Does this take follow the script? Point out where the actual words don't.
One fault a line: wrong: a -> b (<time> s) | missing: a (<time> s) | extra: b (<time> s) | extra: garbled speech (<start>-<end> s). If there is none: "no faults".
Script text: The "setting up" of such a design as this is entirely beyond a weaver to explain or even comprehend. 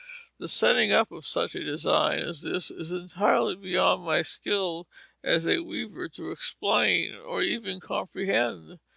extra: my skill as (4.0 s)